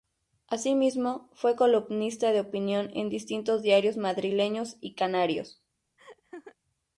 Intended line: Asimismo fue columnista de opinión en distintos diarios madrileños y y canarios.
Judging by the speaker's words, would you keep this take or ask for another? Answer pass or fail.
fail